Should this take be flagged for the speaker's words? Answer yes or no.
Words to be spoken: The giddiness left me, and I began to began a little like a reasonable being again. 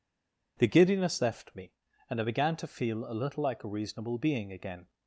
yes